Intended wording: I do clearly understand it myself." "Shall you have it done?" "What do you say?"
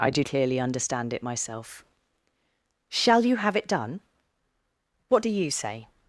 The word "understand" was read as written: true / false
true